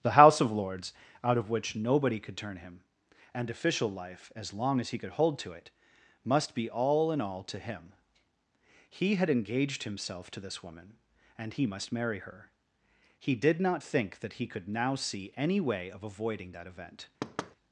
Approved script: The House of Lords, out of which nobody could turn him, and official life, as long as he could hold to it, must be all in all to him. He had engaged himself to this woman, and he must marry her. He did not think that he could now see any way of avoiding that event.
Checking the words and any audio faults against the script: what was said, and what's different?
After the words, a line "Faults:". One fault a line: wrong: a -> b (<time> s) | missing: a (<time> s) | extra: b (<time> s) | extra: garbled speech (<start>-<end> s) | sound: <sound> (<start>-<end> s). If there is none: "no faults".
The House of Lords, out of which nobody could turn him, and official life, as long as he could hold to it, must be all in all to him. He had engaged himself to this woman, and he must marry her. He did not think that he could now see any way of avoiding that event.
Faults:
sound: thud (17.2-17.6 s)